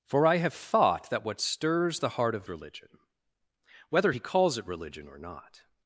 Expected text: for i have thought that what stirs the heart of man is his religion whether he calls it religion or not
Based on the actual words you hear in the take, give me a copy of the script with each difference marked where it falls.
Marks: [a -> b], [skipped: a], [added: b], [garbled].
for i have thought that what stirs the heart of [skipped: man is his] religion whether he calls it religion or not